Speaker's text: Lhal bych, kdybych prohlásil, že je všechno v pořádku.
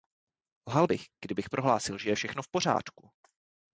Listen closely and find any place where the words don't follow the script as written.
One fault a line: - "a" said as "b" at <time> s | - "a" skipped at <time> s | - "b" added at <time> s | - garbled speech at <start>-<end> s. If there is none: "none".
none